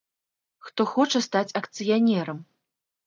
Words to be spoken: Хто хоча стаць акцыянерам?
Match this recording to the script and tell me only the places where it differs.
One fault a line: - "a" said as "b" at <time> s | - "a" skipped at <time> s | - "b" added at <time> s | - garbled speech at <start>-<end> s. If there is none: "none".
none